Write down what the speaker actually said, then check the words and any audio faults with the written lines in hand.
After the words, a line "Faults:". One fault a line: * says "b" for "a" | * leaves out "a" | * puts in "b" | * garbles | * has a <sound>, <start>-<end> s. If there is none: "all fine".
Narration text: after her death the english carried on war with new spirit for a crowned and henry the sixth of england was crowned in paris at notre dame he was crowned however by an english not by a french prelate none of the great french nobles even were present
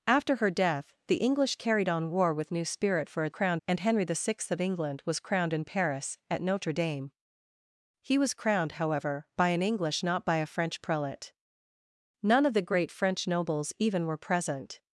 after her death the english carried on war with new spirit for a crowned and henry the sixth of england was crowned in paris at notre dame he was crowned however by an english not by a french prelate none of the great french nobles even were present
Faults:
all fine